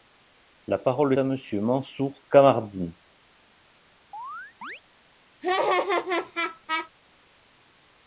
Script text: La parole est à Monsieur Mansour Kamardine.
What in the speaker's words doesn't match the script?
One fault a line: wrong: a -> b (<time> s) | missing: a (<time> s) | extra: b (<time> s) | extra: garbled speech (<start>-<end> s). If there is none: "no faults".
missing: est (1.1 s)